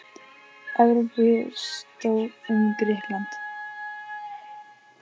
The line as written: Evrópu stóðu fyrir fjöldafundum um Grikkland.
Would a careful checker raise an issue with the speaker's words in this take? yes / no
yes